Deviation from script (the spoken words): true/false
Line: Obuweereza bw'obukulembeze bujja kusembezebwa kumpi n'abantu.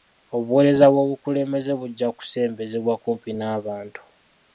false